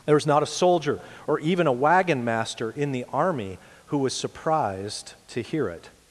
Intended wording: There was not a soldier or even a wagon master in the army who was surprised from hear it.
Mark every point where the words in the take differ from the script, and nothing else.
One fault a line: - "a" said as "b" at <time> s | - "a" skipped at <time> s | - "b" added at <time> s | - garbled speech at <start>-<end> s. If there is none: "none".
- "from" said as "to" at 5.3 s